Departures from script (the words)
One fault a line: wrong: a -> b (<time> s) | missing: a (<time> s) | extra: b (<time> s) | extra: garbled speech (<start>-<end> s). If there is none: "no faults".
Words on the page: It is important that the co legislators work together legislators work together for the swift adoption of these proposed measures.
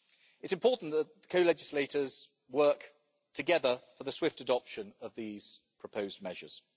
missing: legislators work together (3.8 s)